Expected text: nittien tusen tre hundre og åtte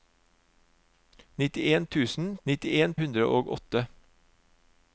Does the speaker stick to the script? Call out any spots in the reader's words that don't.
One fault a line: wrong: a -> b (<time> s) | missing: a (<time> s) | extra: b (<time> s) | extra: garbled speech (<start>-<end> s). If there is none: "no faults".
wrong: tre -> nittien (2.5 s)